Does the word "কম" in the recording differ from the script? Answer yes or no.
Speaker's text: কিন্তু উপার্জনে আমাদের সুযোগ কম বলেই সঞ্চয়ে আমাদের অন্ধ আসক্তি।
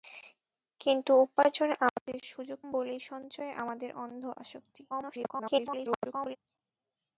yes